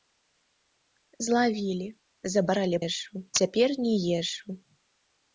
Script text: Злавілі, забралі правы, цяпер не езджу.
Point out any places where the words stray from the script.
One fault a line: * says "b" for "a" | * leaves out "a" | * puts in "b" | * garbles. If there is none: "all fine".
* says "езджу" for "правы"